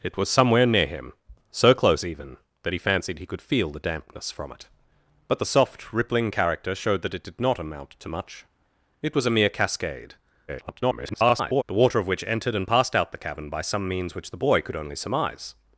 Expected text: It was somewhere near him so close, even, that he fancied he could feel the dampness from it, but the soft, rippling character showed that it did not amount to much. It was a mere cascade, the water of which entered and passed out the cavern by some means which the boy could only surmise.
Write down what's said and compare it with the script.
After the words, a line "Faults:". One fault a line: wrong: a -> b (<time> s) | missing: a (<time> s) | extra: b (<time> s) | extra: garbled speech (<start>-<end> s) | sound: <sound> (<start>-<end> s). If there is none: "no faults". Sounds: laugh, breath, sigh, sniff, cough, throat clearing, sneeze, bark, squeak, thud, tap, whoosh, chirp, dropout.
It was somewhere near him so close, even, that he fancied he could feel the dampness from it, but the soft, rippling character showed that it did not amount to much. It was a mere cascade, [garbled] the water of which entered and passed out the cavern by some means which the boy could only surmise.
Faults:
extra: garbled speech (10.5-11.6 s)